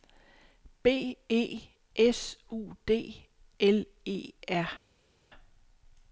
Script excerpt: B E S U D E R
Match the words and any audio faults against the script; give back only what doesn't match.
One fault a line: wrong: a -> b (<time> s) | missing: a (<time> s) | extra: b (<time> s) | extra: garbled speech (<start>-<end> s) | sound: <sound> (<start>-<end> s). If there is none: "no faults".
extra: L (3.6 s)